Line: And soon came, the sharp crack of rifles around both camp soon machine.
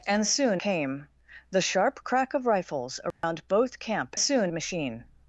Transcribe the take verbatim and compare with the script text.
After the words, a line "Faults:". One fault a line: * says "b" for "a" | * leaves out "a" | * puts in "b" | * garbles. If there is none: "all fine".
And soon came, the sharp crack of rifles around both camp soon machine.
Faults:
all fine